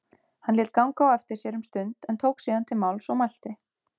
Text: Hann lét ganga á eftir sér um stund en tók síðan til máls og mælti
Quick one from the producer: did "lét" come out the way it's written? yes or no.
yes